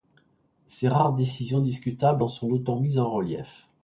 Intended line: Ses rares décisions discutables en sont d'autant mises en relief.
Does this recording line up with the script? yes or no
yes